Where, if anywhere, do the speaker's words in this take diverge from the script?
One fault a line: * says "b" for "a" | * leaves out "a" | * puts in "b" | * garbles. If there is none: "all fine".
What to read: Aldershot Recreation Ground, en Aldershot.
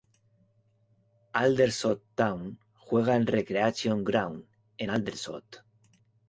* puts in "Town juega en"